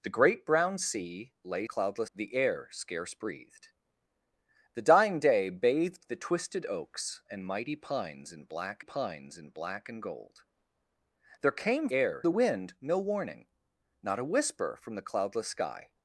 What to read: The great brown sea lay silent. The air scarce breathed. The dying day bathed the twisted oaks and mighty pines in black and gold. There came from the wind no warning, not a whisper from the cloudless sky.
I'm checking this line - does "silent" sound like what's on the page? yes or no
no